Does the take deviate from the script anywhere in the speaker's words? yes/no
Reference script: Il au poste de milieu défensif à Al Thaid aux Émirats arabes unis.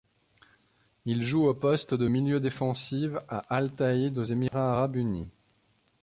yes